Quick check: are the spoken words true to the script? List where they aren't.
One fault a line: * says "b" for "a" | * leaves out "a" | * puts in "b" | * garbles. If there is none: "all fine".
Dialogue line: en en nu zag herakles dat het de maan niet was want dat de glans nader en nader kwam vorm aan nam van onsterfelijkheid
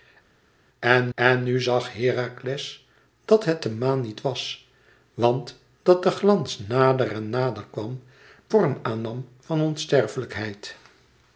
all fine